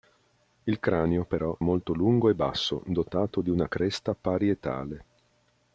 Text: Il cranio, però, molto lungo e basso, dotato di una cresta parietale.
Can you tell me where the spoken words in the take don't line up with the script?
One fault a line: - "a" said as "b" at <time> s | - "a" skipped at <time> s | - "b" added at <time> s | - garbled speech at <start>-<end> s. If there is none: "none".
none